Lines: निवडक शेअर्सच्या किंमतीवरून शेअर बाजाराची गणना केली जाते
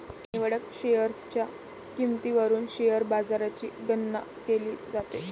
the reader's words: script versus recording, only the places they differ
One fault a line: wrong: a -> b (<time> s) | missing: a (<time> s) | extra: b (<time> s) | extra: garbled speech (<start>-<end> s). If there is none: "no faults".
no faults